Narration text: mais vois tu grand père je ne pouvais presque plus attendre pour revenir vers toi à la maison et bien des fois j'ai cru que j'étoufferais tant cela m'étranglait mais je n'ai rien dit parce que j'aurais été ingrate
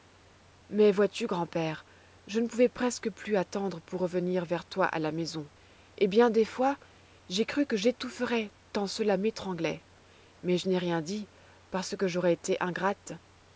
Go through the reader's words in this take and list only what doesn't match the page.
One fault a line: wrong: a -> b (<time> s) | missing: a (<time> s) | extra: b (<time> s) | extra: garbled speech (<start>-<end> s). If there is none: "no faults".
no faults